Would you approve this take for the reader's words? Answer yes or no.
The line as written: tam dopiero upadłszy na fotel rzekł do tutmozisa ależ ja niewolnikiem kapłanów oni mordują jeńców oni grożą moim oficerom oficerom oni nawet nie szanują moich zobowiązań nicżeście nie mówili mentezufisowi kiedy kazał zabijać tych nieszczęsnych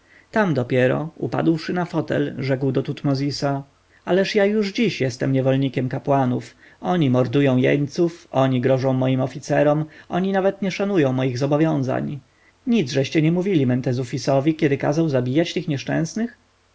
no